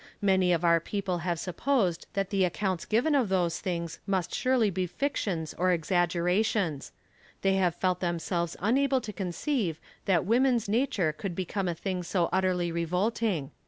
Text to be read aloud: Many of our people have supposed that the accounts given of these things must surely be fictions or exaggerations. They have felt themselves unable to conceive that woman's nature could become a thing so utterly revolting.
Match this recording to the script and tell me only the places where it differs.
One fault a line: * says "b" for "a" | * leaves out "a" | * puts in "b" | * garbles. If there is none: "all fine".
* says "those" for "these"